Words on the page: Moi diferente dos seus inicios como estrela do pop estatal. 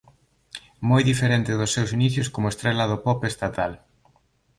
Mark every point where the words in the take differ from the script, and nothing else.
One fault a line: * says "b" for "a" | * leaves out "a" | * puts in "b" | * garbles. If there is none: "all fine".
all fine